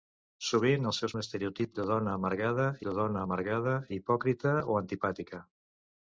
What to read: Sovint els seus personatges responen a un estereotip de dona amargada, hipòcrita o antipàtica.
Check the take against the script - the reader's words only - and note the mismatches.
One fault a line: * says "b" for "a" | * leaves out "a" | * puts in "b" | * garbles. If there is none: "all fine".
* says "un estereotip de dona amargada" for "personatges responen a un estereotip"